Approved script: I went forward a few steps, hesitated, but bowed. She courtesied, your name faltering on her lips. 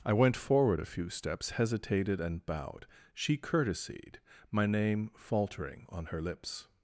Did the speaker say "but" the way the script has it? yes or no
no